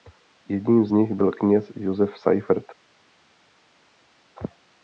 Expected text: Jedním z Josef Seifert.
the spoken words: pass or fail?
fail